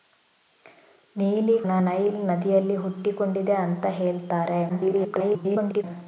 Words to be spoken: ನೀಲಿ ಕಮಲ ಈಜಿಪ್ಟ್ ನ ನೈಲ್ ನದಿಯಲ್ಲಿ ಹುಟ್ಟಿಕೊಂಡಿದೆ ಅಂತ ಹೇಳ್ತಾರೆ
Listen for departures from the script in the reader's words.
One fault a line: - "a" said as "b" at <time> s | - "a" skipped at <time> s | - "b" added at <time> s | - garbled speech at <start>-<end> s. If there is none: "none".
- "ಕಮಲ ಈಜಿಪ್ಟ್" skipped at 1.6 s
- garbled speech at 4.7-5.8 s